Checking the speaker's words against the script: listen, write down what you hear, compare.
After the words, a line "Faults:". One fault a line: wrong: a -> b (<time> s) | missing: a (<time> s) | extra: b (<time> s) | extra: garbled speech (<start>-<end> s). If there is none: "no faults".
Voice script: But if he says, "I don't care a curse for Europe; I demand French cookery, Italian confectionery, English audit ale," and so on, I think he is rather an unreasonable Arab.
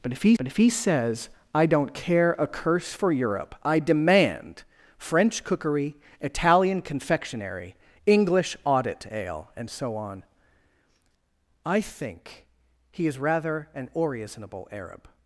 But if he but if he says, "I don't care a curse for Europe; I demand French cookery, Italian confectionery, English audit ale," and so on, I think he is rather an unreasonable Arab.
Faults:
extra: but if he (0.4 s)